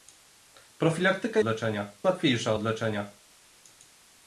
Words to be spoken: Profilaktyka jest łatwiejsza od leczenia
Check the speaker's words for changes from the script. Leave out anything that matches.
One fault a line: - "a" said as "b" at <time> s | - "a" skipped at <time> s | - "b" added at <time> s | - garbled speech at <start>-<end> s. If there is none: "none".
- "jest" said as "leczenia" at 1.4 s